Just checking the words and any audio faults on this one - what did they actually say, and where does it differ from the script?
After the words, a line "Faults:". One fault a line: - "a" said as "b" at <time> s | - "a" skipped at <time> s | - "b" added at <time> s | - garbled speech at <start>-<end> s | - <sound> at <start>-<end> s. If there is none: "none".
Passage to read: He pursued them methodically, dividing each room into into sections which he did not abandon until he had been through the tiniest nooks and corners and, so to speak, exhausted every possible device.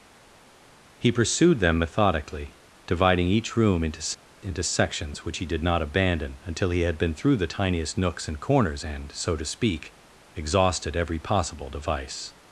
He pursued them methodically, dividing each room into into sections which he did not abandon until he had been through the tiniest nooks and corners and, so to speak, exhausted every possible device.
Faults:
none